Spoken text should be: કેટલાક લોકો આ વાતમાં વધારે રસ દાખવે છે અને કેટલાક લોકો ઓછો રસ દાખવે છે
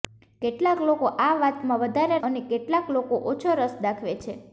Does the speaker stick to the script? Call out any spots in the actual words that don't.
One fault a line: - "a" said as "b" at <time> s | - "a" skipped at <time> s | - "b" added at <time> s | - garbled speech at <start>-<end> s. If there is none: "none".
- "રસ દાખવે છે" skipped at 2.2 s